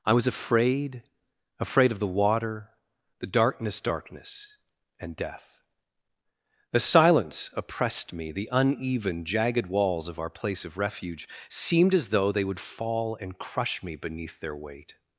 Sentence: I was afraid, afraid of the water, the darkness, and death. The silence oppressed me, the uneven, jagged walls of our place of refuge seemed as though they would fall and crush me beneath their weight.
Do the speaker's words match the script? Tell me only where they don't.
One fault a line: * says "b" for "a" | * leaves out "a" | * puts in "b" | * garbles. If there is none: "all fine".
* puts in "darkness"